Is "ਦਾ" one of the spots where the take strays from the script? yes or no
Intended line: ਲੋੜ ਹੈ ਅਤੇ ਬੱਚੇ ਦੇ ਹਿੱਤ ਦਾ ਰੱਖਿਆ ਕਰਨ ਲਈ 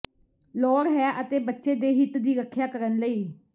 yes